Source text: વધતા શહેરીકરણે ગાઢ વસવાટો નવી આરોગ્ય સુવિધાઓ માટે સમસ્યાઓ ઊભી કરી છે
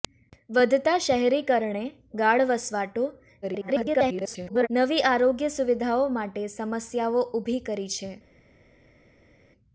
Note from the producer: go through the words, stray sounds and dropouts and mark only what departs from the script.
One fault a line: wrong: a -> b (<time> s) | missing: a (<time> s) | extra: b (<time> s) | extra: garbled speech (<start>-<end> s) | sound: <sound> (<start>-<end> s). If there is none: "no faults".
extra: garbled speech (3.4-4.7 s)